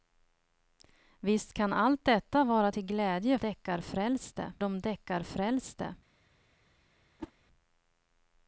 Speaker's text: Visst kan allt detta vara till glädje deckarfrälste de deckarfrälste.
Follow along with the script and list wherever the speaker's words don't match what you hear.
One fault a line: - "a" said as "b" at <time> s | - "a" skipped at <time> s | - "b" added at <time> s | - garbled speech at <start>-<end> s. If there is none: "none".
none